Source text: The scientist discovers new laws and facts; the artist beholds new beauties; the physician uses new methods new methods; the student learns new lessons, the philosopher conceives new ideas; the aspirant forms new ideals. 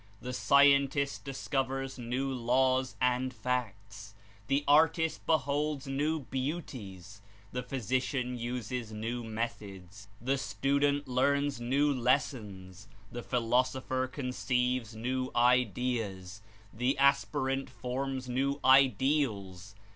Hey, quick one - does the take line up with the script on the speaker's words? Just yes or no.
no